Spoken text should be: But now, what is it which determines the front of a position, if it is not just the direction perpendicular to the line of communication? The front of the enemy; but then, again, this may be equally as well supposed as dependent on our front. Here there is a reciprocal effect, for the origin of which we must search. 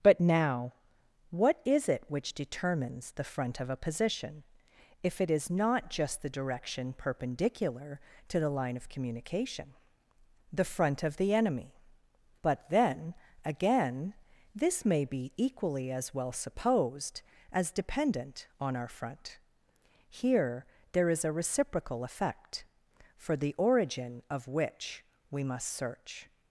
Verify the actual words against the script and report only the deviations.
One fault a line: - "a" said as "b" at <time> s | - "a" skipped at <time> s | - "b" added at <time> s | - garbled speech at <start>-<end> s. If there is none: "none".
none